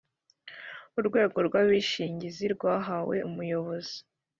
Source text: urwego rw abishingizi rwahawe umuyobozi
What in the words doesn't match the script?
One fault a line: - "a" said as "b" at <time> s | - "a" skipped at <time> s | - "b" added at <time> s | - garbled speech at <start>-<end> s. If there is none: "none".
none